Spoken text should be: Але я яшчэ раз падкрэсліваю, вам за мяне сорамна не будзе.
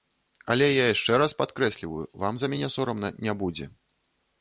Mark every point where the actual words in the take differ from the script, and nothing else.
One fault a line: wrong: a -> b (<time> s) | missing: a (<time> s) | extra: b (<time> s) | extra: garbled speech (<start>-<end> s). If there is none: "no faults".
no faults